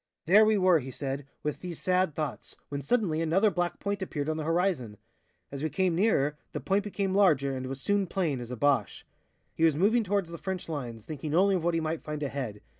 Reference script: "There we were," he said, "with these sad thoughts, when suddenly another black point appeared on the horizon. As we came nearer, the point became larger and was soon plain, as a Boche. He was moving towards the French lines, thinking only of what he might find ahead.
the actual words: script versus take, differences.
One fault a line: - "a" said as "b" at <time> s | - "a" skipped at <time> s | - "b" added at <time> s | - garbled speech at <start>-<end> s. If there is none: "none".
none